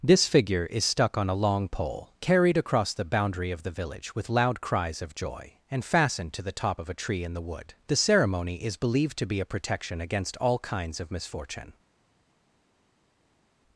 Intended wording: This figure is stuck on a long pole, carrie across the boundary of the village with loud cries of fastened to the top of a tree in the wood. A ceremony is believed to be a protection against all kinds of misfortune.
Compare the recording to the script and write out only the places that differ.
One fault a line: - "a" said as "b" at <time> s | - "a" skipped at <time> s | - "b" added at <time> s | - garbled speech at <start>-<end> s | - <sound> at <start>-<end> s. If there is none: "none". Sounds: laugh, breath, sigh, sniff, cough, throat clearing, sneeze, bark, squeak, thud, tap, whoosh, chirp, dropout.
- "carrie" said as "carried" at 2.2 s
- "joy and" added at 5.1 s
- "A" said as "The" at 7.9 s